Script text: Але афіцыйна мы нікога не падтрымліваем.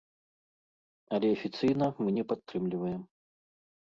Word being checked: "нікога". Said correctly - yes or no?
no